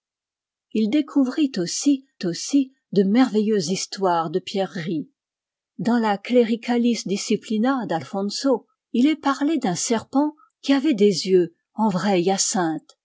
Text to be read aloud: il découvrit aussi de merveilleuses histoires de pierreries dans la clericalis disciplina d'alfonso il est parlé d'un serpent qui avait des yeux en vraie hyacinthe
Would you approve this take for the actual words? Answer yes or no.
no